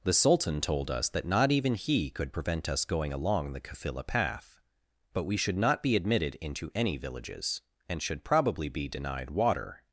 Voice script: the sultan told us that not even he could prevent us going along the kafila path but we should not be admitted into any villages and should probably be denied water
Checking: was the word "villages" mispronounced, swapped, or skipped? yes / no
no